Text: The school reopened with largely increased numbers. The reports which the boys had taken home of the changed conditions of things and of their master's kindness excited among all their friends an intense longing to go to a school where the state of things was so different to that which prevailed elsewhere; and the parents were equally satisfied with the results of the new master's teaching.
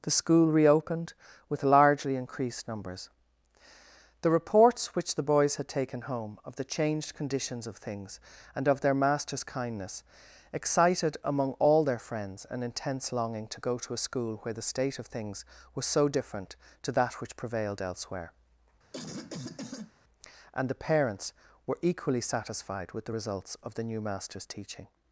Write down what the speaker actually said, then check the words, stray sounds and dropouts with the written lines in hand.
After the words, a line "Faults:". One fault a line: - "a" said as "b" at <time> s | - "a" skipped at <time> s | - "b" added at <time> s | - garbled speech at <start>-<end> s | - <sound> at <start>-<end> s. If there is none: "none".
The school reopened with largely increased numbers. The reports which the boys had taken home of the changed conditions of things and of their master's kindness excited among all their friends an intense longing to go to a school where the state of things was so different to that which prevailed elsewhere; and the parents were equally satisfied with the results of the new master's teaching.
Faults:
- cough at 18.9-19.9 s